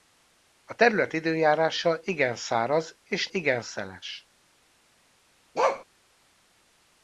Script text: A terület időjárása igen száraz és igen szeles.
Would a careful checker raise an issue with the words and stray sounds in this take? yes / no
yes